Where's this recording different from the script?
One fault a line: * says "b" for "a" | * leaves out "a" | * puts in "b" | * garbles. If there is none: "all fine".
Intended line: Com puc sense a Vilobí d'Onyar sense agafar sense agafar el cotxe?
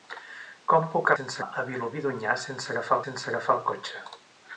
all fine